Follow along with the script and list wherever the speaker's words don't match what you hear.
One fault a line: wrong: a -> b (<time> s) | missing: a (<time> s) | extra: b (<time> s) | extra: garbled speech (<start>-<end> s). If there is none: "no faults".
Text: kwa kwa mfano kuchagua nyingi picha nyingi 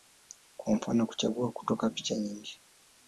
missing: kwa (0.8 s)
wrong: nyingi -> kutoka (1.5 s)